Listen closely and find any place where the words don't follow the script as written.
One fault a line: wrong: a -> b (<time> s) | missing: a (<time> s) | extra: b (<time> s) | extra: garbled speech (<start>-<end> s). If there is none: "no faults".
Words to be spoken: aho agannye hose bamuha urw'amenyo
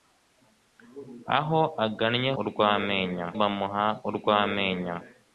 wrong: hose -> urw'amenyo (2.4 s)